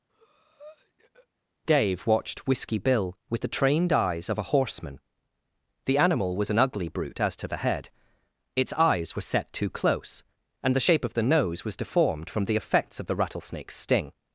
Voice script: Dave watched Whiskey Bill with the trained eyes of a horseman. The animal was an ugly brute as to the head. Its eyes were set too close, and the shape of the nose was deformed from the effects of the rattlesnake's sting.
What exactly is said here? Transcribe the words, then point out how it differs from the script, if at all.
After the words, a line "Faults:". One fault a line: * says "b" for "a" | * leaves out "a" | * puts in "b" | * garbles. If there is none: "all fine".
Dave watched Whiskey Bill with the trained eyes of a horseman. The animal was an ugly brute as to the head. Its eyes were set too close, and the shape of the nose was deformed from the effects of the rattlesnake's sting.
Faults:
all fine